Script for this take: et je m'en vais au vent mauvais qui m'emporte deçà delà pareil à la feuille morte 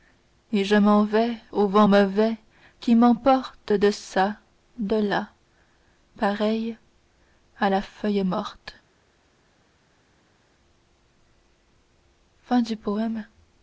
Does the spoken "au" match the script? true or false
true